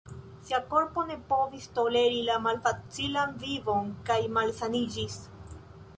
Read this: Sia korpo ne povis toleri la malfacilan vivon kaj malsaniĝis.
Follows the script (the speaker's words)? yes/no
yes